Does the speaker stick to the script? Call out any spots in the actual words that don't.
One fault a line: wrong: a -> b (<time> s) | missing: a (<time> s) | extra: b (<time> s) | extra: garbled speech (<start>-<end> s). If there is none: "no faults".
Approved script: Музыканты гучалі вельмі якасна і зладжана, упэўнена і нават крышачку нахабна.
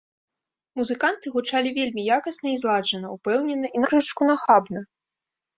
missing: нават (3.9 s)